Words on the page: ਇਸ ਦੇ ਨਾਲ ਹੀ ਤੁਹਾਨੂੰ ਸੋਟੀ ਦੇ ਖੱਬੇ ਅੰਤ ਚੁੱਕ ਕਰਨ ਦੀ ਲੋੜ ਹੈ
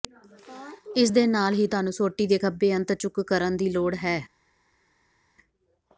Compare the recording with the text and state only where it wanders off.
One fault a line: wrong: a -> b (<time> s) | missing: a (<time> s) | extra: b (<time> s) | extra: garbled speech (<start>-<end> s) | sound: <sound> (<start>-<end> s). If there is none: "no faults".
no faults